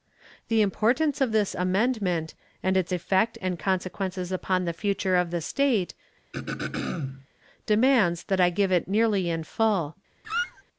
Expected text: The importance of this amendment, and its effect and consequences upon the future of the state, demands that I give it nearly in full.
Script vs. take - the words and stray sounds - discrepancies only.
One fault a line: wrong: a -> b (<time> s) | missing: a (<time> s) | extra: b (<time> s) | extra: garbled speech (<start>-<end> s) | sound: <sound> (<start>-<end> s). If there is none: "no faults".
sound: throat clearing (6.3-7.3 s)
sound: squeak (10.2-10.6 s)